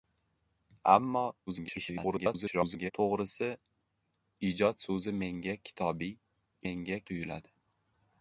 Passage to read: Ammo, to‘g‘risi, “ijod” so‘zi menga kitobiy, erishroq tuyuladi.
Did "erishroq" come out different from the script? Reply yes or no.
yes